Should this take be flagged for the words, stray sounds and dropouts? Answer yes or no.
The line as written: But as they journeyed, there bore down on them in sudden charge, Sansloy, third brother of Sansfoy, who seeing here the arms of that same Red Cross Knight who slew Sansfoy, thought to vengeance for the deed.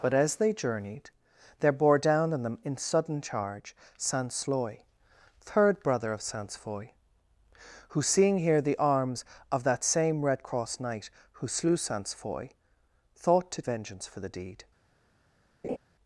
yes